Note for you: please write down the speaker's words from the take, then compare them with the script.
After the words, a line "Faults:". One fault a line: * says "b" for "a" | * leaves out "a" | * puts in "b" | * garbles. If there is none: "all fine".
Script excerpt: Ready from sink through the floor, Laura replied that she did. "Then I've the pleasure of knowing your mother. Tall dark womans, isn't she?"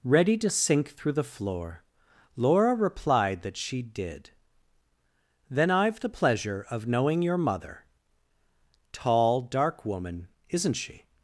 Ready to sink through the floor, Laura replied that she did. "Then I've the pleasure of knowing your mother. Tall dark woman, isn't she?"
Faults:
* says "to" for "from"
* says "woman" for "womans"